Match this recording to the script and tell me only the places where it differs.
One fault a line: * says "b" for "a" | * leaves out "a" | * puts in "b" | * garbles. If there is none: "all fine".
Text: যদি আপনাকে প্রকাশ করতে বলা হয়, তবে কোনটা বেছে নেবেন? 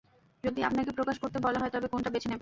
all fine